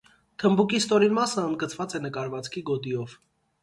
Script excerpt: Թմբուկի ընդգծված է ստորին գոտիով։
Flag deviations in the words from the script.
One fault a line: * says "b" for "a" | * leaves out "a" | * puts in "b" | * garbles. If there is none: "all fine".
* puts in "ստորին մասը"
* says "նկարվածքի" for "ստորին"